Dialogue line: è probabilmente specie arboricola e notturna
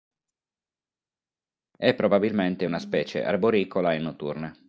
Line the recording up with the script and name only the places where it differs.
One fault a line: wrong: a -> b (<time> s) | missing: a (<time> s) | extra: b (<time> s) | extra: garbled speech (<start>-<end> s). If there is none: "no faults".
extra: una (2.6 s)